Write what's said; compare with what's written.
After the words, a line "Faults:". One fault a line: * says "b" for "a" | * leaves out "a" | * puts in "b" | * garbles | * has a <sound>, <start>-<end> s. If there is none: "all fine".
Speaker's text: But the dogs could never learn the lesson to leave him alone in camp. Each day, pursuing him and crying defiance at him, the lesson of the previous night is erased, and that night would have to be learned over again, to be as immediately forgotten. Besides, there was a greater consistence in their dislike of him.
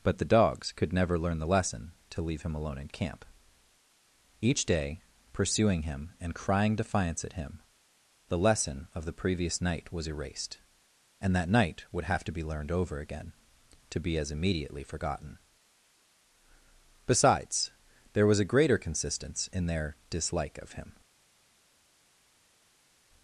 But the dogs could never learn the lesson to leave him alone in camp. Each day, pursuing him and crying defiance at him, the lesson of the previous night was erased, and that night would have to be learned over again, to be as immediately forgotten. Besides, there was a greater consistence in their dislike of him.
Faults:
* says "was" for "is"